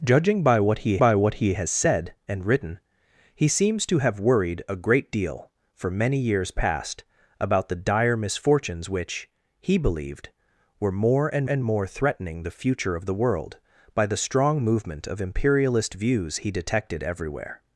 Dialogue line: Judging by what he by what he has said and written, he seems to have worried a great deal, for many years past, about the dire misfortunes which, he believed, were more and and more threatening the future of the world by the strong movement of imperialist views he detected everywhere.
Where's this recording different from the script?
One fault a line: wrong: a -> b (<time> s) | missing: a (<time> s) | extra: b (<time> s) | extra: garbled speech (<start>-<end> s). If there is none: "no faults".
no faults